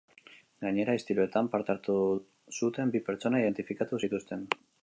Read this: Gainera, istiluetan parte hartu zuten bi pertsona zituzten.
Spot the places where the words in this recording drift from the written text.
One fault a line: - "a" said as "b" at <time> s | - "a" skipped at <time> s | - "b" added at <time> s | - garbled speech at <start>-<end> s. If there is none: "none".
- "identifikatu" added at 3.5 s